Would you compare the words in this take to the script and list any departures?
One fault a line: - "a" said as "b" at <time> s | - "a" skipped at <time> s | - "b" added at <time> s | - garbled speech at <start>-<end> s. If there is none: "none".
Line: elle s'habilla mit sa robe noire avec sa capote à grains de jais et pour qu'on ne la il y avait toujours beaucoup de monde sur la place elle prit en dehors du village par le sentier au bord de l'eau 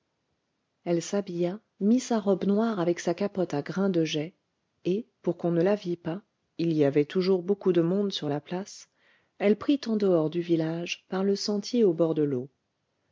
- "vît pas" added at 5.8 s